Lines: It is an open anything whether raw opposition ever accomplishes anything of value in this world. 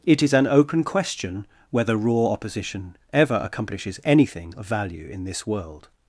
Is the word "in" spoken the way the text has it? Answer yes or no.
yes